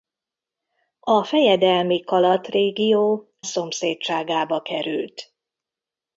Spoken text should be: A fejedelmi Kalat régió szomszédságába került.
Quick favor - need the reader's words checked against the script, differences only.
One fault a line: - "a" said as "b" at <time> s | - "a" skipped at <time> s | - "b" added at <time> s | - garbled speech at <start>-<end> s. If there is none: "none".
none